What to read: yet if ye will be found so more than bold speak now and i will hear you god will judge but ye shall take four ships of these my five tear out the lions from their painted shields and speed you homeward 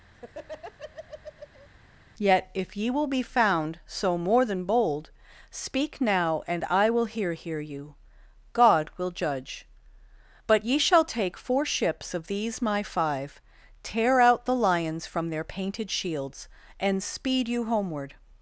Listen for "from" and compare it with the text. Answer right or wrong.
right